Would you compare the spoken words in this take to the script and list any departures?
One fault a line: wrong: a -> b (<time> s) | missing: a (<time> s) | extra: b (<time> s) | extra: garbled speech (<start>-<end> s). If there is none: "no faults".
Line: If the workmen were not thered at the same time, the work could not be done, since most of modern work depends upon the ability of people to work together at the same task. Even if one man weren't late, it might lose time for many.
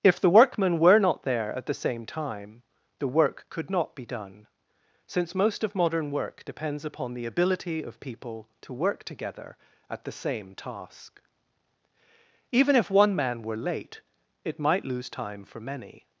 wrong: thered -> there (1.2 s)
wrong: weren't -> were (13.4 s)